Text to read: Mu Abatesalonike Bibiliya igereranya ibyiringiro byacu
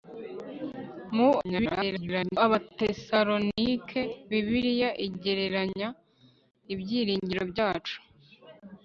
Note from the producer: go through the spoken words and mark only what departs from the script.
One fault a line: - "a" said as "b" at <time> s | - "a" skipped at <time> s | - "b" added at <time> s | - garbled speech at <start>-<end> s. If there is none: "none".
- garbled speech at 1.4-2.4 s